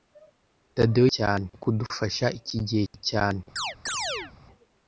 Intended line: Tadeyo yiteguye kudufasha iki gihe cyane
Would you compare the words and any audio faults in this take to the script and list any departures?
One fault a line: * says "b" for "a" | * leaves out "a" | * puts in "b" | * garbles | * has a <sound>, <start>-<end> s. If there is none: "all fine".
* says "cyane" for "yiteguye"
* has a chirp, 3.6-4.3 s